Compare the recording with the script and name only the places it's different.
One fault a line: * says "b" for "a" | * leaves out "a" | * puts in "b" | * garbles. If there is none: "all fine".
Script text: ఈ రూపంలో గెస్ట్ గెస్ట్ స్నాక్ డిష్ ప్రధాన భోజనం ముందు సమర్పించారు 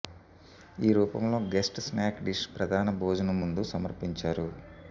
* leaves out "గెస్ట్"